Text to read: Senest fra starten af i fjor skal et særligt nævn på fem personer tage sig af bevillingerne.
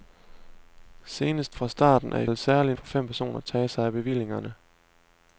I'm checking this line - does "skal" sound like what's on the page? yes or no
no